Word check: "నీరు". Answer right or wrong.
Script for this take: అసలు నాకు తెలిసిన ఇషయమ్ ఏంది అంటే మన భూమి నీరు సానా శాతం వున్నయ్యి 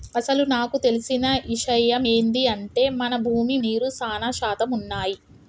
right